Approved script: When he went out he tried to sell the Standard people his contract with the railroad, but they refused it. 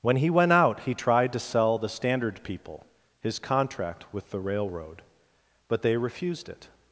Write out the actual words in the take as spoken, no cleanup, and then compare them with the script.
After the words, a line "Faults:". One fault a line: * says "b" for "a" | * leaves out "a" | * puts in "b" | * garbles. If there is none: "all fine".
When he went out he tried to sell the Standard people his contract with the railroad, but they refused it.
Faults:
all fine